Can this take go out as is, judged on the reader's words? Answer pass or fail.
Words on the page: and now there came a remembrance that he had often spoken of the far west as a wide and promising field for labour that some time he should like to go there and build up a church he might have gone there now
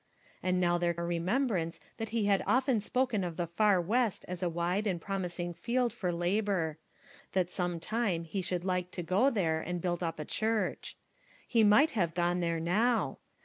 fail